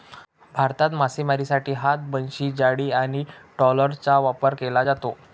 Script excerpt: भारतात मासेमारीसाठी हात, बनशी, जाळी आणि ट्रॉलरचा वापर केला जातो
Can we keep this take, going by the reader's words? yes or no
yes